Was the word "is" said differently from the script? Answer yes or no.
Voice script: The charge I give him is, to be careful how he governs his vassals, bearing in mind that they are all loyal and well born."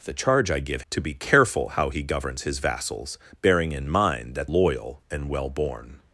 yes